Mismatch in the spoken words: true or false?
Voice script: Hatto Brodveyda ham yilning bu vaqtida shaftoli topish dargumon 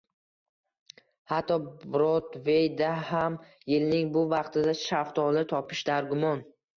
false